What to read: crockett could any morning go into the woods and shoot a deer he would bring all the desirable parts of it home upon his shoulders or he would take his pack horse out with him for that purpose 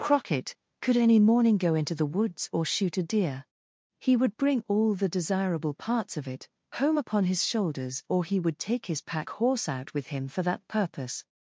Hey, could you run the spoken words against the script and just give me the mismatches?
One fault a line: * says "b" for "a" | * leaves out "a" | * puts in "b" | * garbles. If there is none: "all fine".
* says "or" for "and"